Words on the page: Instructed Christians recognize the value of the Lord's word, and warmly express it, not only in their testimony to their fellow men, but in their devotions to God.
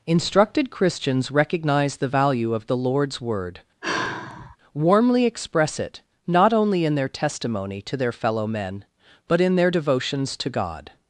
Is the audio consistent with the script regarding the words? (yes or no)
no